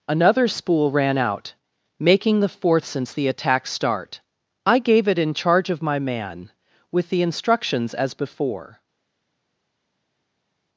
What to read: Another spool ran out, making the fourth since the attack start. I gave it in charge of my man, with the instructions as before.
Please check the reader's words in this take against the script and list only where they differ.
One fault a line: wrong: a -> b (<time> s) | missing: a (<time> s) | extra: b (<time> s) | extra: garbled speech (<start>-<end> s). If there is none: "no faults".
no faults